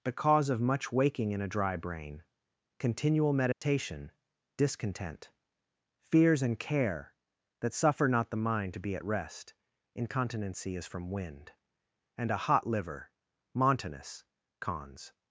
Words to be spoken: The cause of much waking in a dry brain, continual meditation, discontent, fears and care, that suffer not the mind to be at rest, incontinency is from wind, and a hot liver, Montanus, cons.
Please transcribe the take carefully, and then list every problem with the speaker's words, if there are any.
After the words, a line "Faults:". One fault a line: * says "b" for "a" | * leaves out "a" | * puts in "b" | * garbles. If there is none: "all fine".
The cause of much waking in a dry brain, continual meditation, discontent, fears and care, that suffer not the mind to be at rest, incontinency is from wind, and a hot liver, Montanus, cons.
Faults:
all fine